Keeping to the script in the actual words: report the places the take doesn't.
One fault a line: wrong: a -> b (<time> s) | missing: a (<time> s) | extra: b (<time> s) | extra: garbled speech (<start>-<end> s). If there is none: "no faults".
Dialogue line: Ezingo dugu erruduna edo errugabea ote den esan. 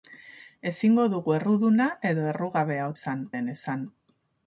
wrong: ote -> esan (3.0 s)